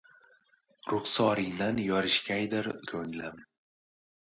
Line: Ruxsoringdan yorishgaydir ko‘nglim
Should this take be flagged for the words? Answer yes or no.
no